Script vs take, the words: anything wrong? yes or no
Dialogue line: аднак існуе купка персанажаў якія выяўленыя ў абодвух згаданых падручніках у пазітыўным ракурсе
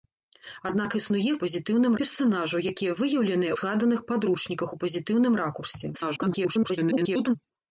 yes